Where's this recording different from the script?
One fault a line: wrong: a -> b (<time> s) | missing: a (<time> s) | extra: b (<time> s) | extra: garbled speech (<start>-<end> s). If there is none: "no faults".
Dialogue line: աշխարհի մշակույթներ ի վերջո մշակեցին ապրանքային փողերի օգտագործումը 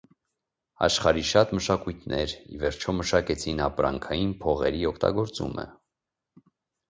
extra: շատ (1.3 s)